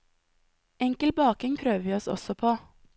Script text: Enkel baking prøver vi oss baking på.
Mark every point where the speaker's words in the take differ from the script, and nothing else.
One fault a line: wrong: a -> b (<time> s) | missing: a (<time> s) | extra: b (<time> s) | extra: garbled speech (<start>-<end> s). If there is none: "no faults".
wrong: baking -> også (2.1 s)